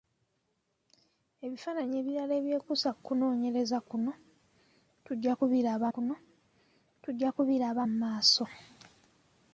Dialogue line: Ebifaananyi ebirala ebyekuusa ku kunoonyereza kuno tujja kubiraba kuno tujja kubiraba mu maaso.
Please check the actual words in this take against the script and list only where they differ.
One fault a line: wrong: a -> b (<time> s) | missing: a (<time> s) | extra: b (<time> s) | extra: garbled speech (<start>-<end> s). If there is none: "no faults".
no faults